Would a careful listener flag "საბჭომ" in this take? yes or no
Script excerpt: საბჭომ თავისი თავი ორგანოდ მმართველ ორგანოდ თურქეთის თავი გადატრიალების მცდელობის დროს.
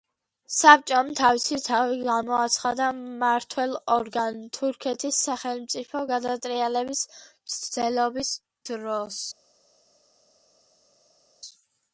no